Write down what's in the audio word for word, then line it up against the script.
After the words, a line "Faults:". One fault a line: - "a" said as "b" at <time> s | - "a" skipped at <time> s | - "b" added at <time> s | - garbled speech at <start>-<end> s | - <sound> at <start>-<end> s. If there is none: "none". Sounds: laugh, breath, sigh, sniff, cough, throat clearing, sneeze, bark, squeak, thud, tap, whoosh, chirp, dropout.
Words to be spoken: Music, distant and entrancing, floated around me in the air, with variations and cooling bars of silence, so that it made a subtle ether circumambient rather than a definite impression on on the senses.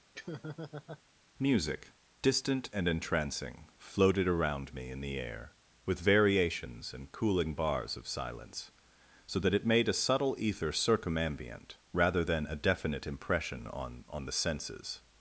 Music, distant and entrancing, floated around me in the air, with variations and cooling bars of silence, so that it made a subtle ether circumambient rather than a definite impression on on the senses.
Faults:
- laugh at 0.1-1.0 s